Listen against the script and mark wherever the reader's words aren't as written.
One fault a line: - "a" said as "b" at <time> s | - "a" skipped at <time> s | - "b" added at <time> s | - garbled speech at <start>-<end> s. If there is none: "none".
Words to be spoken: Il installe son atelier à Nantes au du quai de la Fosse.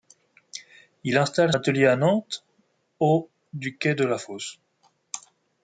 - "son" skipped at 1.5 s